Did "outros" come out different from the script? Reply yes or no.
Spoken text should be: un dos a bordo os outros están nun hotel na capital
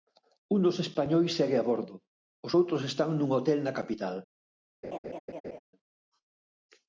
no